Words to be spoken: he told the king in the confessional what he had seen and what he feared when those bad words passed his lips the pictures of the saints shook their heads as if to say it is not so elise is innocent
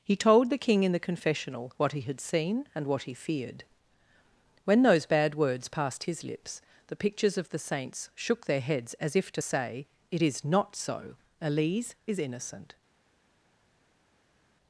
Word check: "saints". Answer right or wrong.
right